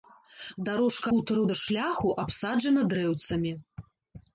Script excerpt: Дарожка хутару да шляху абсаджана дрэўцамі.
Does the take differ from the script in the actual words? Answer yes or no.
no